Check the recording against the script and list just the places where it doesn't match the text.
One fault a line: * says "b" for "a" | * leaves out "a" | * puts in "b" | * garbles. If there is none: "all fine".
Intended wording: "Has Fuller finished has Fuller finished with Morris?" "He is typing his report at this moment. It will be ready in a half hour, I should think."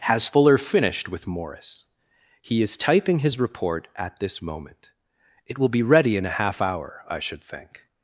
* leaves out "has Fuller finished"